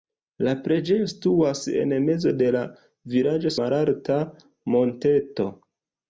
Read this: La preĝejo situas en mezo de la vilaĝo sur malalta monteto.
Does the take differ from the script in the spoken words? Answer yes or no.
yes